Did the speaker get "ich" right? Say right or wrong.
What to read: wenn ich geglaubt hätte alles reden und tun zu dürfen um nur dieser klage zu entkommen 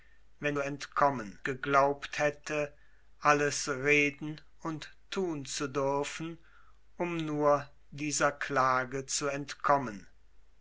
wrong